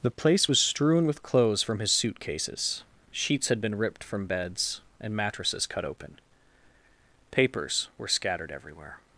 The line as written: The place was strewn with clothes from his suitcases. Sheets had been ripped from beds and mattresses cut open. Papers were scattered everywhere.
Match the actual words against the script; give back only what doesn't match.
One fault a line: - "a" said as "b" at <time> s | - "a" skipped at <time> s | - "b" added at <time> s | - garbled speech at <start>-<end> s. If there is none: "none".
none